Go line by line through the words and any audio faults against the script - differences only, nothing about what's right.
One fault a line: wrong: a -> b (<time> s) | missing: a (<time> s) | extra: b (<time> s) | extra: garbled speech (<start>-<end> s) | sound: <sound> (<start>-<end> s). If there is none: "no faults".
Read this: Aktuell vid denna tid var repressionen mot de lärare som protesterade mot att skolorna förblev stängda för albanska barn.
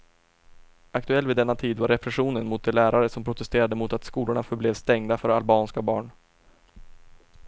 no faults